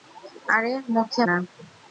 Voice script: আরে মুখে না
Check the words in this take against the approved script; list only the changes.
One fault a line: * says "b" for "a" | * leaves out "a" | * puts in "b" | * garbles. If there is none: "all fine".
all fine